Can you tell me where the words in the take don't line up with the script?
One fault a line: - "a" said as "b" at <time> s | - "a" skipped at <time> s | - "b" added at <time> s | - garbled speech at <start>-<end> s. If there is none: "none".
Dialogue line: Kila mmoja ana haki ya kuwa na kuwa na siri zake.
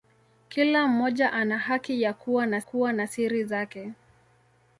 none